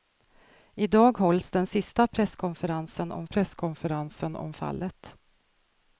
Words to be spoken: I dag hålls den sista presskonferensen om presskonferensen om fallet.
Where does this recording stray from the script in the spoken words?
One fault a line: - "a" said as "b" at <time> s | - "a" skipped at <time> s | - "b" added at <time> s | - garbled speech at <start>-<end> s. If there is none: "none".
none